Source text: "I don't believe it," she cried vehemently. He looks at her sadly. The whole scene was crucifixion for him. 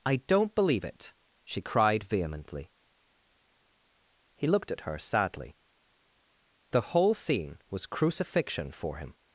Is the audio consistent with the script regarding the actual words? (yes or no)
no